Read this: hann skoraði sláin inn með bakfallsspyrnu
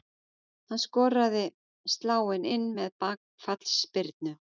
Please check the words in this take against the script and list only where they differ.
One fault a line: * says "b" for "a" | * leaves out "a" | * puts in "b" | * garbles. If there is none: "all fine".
all fine